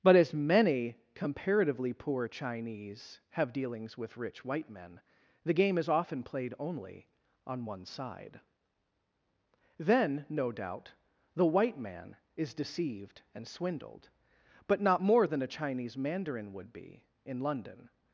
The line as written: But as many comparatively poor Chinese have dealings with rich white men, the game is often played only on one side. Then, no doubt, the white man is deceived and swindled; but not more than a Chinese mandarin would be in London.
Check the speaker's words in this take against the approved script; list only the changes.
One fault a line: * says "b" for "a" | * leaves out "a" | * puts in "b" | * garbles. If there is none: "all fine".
all fine